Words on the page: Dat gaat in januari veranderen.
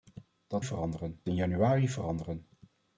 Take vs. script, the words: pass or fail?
fail